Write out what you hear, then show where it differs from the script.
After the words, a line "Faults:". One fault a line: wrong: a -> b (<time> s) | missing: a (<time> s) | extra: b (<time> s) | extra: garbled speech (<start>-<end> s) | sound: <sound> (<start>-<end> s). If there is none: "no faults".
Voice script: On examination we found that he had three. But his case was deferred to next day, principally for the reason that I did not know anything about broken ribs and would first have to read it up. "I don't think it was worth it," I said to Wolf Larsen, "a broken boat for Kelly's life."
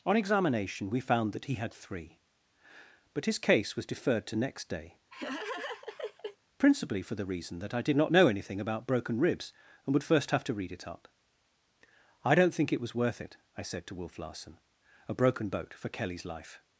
On examination we found that he had three. But his case was deferred to next day, principally for the reason that I did not know anything about broken ribs and would first have to read it up. "I don't think it was worth it," I said to Wolf Larsen, "a broken boat for Kelly's life."
Faults:
sound: laugh (5.1-6.4 s)